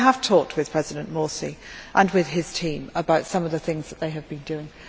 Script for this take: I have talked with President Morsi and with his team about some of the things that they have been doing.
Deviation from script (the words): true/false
false